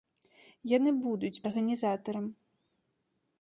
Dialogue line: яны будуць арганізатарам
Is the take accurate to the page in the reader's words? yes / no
yes